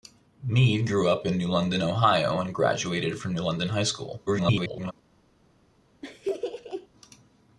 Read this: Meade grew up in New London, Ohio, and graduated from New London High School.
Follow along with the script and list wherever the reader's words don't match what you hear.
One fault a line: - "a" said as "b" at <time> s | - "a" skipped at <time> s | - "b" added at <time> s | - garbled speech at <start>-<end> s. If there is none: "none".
- garbled speech at 4.3-4.9 s